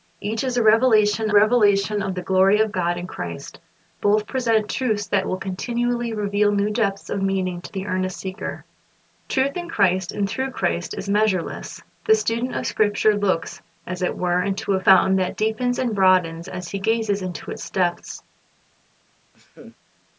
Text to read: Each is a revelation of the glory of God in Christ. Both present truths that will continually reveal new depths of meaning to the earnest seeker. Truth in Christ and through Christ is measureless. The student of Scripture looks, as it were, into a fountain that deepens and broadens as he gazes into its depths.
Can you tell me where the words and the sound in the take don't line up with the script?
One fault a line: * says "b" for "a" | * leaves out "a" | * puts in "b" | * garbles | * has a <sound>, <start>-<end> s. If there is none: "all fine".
* puts in "revelation"
* has a laugh, 19.3-19.8 s